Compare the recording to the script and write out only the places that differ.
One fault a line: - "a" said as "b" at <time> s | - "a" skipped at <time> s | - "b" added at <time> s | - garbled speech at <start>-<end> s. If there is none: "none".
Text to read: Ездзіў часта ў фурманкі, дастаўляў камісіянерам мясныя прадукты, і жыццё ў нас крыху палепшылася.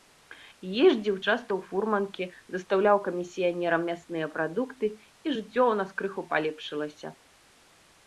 none